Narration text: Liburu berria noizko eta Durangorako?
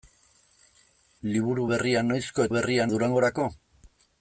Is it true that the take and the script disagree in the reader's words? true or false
true